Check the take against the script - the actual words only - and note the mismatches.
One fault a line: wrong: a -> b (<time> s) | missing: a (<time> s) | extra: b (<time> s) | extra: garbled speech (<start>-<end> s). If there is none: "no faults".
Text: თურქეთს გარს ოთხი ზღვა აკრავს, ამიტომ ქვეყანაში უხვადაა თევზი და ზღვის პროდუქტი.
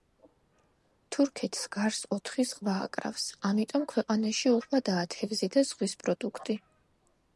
no faults